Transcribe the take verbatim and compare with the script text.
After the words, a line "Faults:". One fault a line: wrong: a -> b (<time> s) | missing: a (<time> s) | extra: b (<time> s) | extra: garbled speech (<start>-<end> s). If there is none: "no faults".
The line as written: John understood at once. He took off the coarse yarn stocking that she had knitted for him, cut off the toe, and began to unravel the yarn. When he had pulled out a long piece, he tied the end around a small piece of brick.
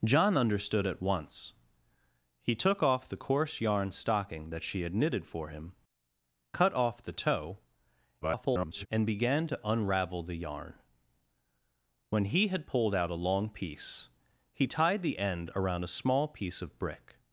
John understood at once. He took off the coarse yarn stocking that she had knitted for him, cut off the toe, [garbled] and began to unravel the yarn. When he had pulled out a long piece, he tied the end around a small piece of brick.
Faults:
extra: garbled speech (8.2-8.9 s)